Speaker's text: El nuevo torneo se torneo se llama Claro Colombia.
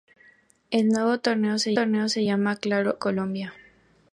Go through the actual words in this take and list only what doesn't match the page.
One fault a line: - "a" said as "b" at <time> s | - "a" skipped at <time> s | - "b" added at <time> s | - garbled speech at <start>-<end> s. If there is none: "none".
none